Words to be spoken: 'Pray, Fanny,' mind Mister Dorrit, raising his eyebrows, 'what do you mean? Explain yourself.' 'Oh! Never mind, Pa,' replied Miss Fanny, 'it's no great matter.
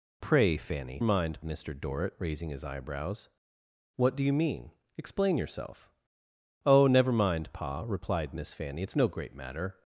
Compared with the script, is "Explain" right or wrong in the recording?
right